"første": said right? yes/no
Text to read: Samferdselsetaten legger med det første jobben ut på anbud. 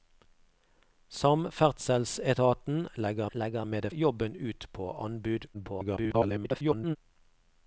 no